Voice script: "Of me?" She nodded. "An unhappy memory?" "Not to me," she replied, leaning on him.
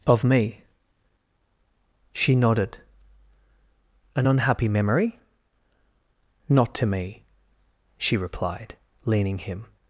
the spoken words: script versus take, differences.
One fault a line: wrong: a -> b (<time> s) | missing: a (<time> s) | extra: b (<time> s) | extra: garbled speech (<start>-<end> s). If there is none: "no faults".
missing: on (9.4 s)